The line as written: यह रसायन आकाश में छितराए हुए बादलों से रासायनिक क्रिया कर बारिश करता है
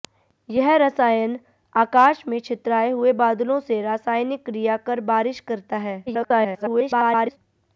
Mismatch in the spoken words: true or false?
true